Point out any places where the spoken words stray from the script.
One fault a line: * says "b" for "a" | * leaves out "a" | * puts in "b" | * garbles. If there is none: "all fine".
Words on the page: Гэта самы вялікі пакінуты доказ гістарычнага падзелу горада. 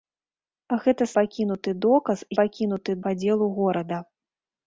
* leaves out "самы вялікі"
* says "пакінуты" for "гістарычнага"